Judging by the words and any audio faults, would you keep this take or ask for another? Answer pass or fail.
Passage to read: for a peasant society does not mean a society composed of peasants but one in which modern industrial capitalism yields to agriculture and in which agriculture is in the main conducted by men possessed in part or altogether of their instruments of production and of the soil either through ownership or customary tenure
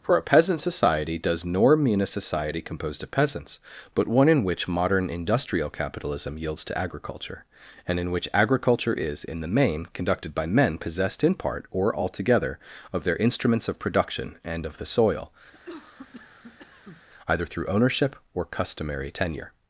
fail